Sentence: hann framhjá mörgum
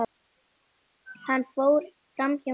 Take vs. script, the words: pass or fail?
fail